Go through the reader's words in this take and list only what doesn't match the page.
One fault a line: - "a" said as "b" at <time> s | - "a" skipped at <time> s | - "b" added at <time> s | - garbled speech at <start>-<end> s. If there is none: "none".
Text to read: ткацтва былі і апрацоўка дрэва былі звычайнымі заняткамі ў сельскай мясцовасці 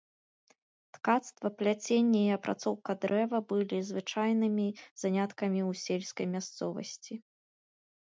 - "былі" said as "пляценне" at 1.6 s